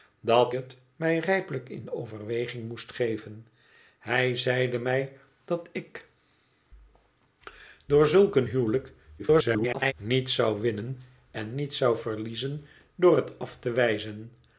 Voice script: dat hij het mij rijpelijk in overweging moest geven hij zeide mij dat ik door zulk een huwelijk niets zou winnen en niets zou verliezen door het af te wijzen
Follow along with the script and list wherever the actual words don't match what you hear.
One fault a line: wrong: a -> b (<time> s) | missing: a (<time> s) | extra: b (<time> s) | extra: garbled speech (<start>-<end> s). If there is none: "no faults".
missing: hij (0.5 s)
extra: garbled speech (9.2-9.9 s)